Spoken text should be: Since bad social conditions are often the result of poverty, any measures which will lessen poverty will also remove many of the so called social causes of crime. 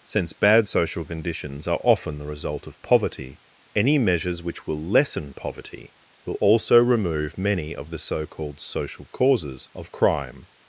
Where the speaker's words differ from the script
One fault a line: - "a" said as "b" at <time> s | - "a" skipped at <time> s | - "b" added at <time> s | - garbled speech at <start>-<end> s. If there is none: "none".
none